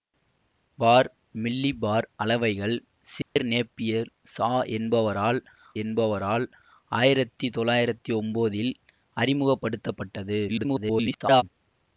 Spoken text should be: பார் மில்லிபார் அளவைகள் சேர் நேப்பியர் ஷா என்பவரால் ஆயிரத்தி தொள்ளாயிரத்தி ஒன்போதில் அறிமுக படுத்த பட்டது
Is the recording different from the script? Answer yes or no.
yes